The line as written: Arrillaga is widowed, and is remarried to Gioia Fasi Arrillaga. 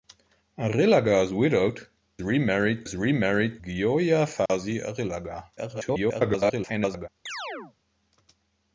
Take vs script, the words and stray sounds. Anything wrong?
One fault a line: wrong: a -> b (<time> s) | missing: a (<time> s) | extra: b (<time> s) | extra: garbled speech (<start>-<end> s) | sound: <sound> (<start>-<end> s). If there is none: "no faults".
wrong: and -> remarried (2.2 s)
missing: to (3.6 s)
sound: dropout (4.5-4.5 s)
extra: garbled speech (5.6-7.1 s)
sound: chirp (7.3-7.7 s)